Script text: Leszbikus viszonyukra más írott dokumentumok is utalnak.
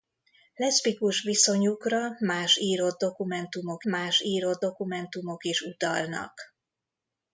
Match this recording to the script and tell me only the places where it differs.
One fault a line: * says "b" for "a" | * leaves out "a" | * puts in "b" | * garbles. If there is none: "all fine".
* puts in "más írott dokumentumok"